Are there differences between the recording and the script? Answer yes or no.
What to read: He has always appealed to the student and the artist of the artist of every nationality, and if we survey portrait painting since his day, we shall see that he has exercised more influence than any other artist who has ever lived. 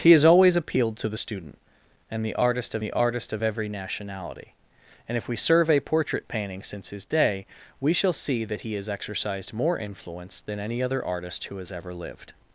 no